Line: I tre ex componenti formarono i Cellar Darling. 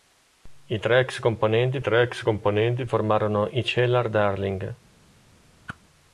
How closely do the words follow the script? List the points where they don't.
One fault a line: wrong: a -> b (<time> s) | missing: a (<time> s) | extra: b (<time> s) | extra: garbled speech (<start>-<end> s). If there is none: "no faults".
extra: tre ex componenti (1.8 s)